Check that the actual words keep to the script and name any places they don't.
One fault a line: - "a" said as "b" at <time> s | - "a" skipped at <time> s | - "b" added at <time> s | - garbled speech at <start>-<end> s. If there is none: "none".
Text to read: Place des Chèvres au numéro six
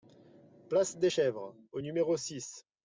none